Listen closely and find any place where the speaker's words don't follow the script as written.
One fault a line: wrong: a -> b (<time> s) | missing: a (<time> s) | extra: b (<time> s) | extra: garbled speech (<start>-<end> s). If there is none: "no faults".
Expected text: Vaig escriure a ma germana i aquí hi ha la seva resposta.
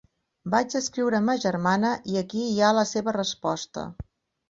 no faults